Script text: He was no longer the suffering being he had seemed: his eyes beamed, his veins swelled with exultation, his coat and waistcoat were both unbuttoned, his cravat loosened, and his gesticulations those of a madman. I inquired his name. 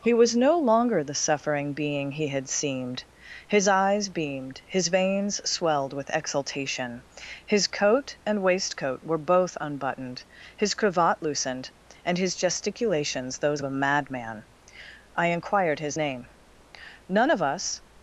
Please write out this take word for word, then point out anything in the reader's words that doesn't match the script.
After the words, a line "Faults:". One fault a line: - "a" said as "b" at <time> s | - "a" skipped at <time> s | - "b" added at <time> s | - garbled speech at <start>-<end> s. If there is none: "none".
He was no longer the suffering being he had seemed: his eyes beamed, his veins swelled with exultation, his coat and waistcoat were both unbuttoned, his cravat loosened, and his gesticulations those of a madman. I inquired his name. 'None of us
Faults:
- "None of us" added at 17.1 s